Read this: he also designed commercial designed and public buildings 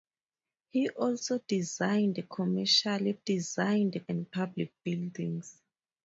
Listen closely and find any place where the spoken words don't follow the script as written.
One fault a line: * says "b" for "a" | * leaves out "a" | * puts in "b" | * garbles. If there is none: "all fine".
all fine